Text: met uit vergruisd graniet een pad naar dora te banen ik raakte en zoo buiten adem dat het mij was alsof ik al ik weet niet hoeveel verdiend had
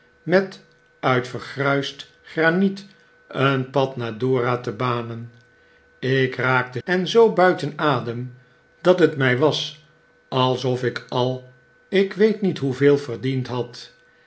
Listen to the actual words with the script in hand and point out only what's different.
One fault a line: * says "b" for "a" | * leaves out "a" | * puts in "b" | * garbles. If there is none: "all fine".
all fine